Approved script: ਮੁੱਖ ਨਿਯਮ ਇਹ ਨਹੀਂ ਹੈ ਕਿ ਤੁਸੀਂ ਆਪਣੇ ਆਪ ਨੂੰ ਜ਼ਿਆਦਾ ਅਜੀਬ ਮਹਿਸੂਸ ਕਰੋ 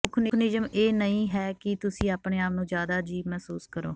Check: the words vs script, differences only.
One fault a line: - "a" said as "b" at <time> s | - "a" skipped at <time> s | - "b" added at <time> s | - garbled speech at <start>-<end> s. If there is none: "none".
none